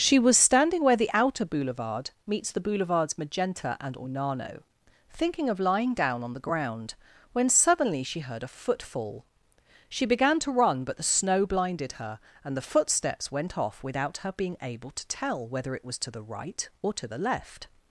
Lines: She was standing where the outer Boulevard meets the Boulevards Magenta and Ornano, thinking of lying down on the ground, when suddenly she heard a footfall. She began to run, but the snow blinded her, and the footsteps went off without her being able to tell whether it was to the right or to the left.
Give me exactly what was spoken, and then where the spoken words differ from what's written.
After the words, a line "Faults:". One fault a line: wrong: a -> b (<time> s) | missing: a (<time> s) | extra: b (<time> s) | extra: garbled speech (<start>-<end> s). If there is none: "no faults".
She was standing where the outer Boulevard meets the Boulevards Magenta and Ornano, thinking of lying down on the ground, when suddenly she heard a footfall. She began to run, but the snow blinded her, and the footsteps went off without her being able to tell whether it was to the right or to the left.
Faults:
no faults